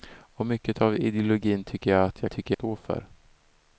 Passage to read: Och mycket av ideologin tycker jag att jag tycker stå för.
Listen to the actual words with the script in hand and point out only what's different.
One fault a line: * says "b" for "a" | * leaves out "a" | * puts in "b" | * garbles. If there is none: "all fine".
all fine